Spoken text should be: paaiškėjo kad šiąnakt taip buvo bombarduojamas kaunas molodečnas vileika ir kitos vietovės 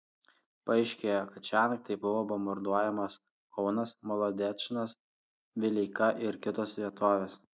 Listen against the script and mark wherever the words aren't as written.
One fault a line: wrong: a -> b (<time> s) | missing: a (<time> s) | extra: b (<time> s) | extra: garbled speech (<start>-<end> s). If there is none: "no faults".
no faults